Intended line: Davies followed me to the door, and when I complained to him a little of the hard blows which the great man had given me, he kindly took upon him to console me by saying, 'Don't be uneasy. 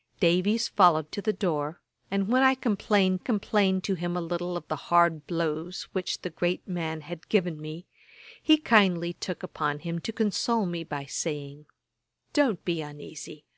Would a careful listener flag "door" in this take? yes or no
no